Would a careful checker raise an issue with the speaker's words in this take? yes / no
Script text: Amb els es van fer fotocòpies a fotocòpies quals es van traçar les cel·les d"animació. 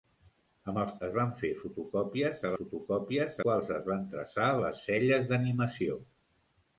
no